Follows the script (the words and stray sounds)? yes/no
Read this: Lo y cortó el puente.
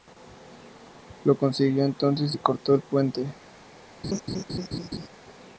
no